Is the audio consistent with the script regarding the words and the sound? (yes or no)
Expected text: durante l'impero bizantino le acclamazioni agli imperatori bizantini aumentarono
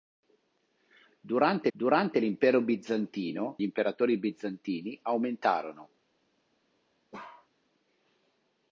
no